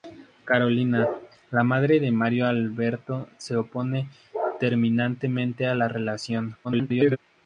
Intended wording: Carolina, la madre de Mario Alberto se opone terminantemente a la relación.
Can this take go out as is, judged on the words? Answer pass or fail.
fail